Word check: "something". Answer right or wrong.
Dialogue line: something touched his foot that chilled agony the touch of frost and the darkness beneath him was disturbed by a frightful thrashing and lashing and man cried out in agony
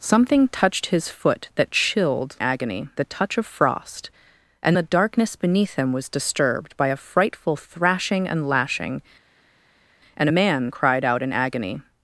right